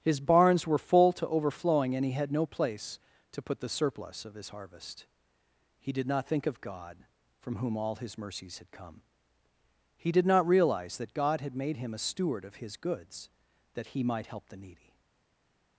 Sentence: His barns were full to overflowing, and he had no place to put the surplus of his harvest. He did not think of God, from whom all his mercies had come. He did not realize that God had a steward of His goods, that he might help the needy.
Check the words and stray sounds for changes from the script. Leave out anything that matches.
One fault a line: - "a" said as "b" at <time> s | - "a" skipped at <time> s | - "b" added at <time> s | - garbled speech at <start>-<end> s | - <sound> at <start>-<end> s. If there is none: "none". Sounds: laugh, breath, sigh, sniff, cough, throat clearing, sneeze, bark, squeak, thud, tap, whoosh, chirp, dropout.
- "made him" added at 11.5 s